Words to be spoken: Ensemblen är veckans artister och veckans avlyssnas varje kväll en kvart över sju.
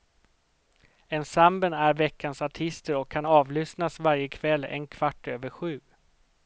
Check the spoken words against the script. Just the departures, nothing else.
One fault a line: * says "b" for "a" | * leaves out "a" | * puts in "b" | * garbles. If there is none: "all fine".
* says "kan" for "veckans"